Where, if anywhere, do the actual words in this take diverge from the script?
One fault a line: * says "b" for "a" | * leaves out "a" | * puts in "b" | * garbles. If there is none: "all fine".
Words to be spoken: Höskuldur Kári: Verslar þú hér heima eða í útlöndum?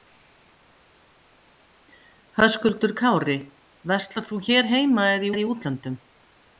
* puts in "eða"